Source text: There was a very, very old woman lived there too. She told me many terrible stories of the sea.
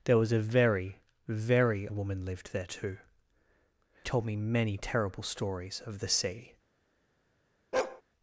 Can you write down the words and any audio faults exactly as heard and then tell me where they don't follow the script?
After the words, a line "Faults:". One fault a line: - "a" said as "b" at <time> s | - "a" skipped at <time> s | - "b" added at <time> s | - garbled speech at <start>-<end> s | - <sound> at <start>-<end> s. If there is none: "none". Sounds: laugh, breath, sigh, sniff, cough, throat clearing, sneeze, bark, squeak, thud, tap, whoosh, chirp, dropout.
There was a very, very woman lived there too. Told me many terrible stories of the sea.
Faults:
- "old" skipped at 1.9 s
- "She" skipped at 3.0 s
- bark at 7.7-8.0 s